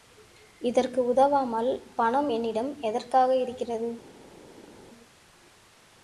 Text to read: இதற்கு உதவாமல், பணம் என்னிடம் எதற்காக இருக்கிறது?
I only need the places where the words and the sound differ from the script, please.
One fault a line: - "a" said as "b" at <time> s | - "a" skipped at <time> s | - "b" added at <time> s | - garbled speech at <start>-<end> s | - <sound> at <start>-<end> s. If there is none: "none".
none